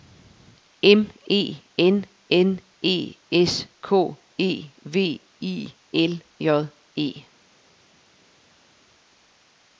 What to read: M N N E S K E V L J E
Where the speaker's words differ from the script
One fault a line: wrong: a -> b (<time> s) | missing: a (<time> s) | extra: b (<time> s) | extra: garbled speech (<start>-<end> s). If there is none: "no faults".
extra: E (1.3 s)
extra: I (5.4 s)